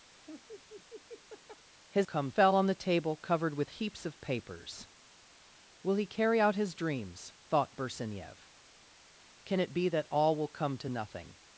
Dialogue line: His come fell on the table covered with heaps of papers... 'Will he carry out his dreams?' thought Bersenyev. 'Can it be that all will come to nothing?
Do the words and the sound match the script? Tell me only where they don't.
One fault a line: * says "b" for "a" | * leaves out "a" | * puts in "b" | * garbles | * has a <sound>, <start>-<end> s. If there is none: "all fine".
* has a laugh, 0.1-1.7 s